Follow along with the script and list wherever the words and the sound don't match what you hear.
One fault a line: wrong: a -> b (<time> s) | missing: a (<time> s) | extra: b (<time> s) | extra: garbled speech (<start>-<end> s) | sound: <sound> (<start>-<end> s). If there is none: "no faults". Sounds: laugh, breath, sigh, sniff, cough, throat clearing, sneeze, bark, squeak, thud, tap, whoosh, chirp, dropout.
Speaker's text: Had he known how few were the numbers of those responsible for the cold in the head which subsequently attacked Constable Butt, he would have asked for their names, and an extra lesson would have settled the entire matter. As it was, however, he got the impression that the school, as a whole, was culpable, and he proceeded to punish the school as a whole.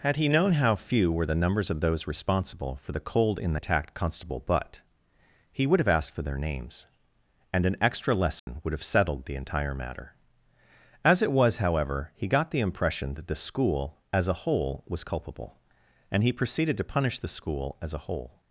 missing: head which subsequently (3.6 s)
sound: dropout (8.4-8.5 s)